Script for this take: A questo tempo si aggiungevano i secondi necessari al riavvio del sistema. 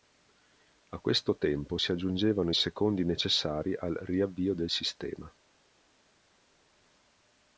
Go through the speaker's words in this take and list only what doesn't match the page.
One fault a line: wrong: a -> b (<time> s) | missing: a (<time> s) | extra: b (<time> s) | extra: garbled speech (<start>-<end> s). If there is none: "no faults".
no faults